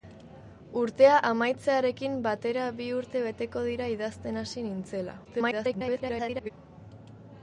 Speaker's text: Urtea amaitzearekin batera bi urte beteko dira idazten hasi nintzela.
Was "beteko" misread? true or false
false